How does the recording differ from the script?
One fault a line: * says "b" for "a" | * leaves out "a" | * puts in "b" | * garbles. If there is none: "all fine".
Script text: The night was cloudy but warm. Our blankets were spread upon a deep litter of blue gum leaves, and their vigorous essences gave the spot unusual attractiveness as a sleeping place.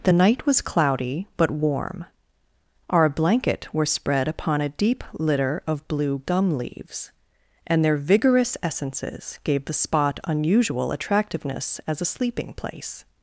* says "blanket" for "blankets"